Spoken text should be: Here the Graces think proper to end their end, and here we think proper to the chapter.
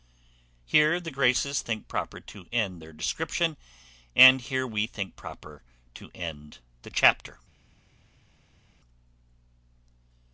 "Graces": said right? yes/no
yes